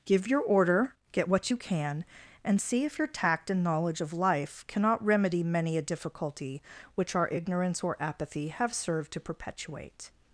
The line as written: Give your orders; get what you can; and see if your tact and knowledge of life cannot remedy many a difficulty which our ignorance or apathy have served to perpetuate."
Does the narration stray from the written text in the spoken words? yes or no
yes